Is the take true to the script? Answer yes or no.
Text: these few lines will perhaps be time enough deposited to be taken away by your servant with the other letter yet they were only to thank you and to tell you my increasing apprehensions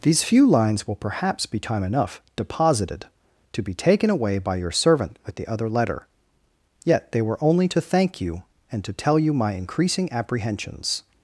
yes